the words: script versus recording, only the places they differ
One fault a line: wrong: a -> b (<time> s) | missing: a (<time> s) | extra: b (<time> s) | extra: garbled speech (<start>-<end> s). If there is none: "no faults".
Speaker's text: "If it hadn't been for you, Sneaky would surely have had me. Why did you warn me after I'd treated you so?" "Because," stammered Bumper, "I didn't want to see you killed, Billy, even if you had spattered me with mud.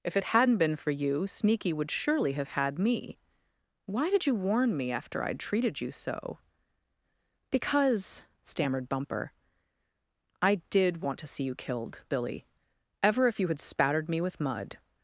wrong: didn't -> did (10.7 s)
wrong: even -> ever (13.0 s)